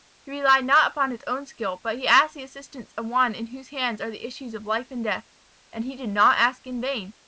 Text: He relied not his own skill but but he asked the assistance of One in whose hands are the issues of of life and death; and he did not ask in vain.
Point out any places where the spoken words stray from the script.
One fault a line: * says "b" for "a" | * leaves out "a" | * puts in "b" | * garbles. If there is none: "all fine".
* puts in "upon"
* leaves out "but"
* leaves out "of"